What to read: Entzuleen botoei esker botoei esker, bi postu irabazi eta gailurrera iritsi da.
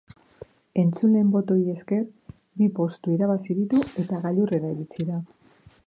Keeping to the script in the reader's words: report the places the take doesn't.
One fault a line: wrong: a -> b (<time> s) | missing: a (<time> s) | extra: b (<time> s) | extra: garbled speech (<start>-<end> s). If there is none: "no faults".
missing: botoei esker (2.0 s)
extra: ditu (3.6 s)